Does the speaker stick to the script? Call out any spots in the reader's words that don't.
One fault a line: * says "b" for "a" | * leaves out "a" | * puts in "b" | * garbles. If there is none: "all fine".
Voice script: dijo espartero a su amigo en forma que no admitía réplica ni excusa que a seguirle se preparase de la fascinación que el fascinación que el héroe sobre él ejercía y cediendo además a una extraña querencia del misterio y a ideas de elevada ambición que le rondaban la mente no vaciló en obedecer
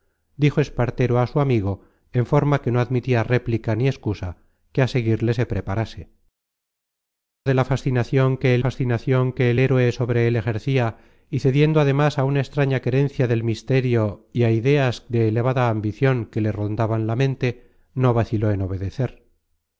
all fine